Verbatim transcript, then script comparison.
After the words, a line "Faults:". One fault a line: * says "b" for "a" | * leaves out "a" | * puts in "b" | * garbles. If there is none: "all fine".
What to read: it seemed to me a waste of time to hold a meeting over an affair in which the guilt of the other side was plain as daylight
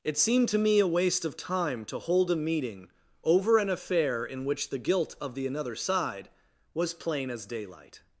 it seemed to me a waste of time to hold a meeting over an affair in which the guilt of the another side was plain as daylight
Faults:
* says "another" for "other"